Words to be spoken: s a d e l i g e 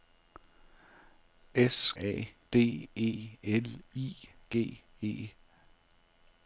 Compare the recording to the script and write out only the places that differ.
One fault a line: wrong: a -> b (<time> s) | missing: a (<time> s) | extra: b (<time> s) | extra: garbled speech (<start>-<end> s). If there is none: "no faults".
no faults